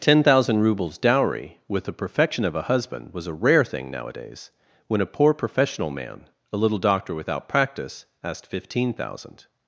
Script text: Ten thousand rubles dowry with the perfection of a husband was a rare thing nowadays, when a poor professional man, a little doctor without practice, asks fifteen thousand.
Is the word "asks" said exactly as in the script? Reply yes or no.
no